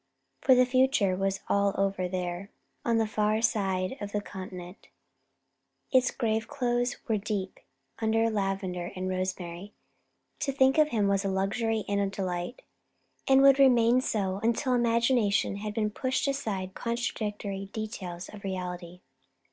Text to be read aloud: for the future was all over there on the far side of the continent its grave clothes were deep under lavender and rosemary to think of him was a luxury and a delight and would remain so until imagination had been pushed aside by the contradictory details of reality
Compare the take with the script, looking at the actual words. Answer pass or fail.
fail